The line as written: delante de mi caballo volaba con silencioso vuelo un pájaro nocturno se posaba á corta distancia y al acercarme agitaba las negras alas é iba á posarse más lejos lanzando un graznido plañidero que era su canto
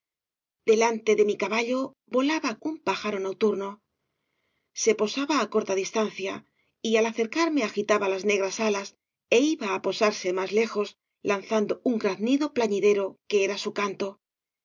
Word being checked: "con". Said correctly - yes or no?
no